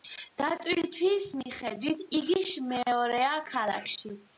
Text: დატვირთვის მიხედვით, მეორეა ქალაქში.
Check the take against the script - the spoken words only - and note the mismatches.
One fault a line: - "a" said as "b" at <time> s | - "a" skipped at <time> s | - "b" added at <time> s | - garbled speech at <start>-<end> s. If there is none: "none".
- "იგი" added at 2.2 s